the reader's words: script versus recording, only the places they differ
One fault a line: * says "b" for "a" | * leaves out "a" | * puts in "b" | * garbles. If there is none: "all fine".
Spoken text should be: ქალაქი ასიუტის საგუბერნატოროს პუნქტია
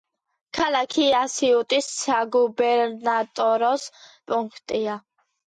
all fine